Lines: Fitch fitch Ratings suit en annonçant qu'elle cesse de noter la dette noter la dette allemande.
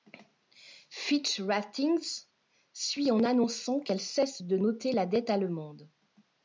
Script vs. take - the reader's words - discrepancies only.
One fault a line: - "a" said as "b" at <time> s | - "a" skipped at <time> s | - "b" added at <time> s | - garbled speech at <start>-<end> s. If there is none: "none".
- "fitch" skipped at 1.4 s
- "noter la dette" skipped at 5.3 s